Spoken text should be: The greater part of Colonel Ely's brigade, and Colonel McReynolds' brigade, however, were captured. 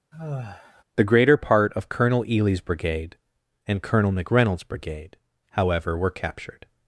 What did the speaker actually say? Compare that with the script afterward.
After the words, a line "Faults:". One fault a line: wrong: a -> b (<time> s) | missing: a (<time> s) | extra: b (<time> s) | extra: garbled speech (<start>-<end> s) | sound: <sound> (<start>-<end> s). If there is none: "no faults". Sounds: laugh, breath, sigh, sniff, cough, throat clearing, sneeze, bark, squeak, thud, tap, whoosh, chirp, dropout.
The greater part of Colonel Ely's brigade, and Colonel McReynolds' brigade, however, were captured.
Faults:
sound: sigh (0.1-0.8 s)